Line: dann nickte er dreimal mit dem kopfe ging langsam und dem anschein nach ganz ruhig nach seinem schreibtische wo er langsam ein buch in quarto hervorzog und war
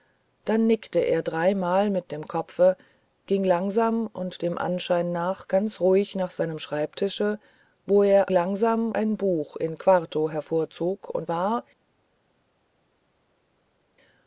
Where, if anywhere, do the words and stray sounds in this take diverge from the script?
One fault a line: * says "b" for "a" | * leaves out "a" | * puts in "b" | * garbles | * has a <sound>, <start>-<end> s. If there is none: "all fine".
all fine